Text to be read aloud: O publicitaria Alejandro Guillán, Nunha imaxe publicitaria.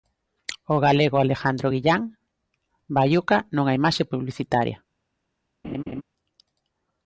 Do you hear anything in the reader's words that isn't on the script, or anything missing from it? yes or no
yes